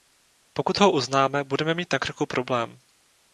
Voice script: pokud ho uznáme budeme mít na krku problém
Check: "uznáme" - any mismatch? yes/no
no